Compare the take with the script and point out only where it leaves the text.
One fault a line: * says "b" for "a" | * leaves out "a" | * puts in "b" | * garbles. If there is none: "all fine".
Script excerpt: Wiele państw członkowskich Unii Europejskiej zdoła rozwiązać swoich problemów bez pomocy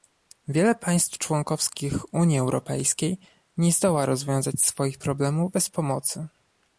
* puts in "nie"